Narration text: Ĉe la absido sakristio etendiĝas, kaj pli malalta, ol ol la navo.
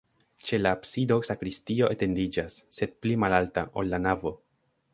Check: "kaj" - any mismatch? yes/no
yes